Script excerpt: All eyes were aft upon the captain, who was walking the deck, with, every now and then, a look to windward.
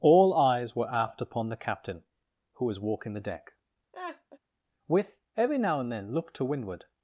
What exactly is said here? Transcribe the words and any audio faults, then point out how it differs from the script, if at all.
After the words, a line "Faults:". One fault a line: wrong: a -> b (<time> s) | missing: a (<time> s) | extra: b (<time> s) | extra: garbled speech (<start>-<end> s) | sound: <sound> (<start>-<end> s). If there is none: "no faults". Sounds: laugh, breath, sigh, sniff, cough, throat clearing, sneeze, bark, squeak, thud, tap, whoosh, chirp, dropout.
All eyes were aft upon the captain, who was walking the deck, with, every now and then, look to windward.
Faults:
sound: laugh (3.9-4.4 s)
missing: a (6.1 s)